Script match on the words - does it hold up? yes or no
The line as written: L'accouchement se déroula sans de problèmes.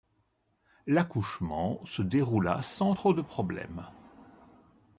no